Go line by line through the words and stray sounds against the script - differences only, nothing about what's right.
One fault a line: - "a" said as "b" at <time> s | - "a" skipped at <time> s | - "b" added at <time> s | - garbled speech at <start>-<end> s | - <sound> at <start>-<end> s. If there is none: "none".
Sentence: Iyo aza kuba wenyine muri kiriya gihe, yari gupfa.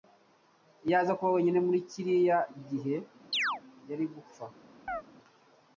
- chirp at 3.3-3.6 s
- chirp at 4.9-5.0 s